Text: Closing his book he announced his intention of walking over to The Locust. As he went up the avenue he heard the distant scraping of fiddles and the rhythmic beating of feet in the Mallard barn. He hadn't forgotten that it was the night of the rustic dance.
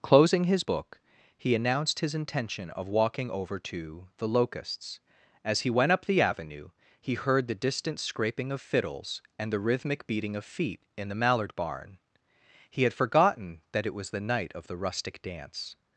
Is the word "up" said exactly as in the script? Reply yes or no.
yes